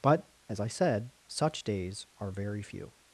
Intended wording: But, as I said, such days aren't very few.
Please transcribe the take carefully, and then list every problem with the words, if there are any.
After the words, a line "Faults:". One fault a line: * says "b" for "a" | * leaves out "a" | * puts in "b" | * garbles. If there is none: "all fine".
But, as I said, such days are very few.
Faults:
* says "are" for "aren't"